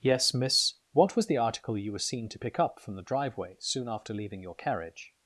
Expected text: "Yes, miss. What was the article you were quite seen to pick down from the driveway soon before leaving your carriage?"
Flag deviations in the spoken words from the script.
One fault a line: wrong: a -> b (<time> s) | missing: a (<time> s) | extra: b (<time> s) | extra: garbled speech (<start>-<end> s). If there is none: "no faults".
missing: quite (2.0 s)
wrong: down -> up (2.6 s)
wrong: before -> after (3.9 s)